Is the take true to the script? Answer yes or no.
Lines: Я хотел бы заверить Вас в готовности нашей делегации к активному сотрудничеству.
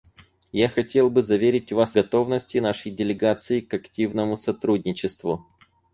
no